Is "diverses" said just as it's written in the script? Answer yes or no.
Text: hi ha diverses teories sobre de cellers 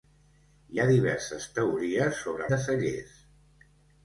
yes